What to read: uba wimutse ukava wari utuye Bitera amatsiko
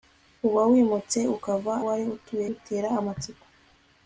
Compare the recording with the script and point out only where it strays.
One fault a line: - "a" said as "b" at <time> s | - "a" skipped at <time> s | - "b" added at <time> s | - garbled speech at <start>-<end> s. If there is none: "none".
none